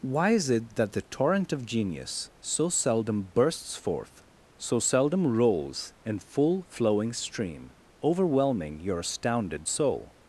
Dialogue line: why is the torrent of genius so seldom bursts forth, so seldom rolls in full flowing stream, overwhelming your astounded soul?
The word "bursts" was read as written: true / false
true